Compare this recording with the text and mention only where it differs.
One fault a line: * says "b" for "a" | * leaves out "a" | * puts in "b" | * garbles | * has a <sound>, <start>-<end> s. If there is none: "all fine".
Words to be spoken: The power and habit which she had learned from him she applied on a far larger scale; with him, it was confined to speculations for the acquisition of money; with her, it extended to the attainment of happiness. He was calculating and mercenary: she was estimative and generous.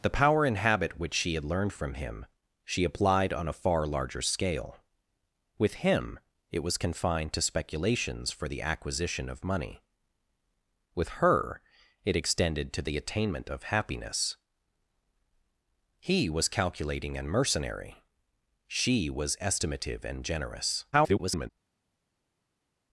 * garbles